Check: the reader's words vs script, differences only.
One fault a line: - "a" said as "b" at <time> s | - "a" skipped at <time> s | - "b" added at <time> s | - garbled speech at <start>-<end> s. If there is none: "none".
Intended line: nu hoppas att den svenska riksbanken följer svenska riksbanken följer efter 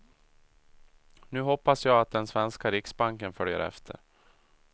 - "jag" added at 1.9 s
- "svenska riksbanken följer" skipped at 3.6 s